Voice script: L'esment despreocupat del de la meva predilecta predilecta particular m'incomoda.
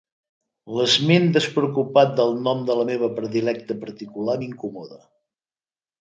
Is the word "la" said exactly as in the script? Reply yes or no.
yes